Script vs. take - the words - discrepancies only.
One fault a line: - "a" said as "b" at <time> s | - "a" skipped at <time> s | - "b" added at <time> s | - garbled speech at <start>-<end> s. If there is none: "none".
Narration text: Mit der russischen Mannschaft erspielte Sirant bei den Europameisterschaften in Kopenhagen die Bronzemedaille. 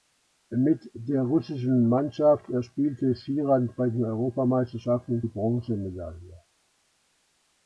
- "Kopenhagen" skipped at 5.2 s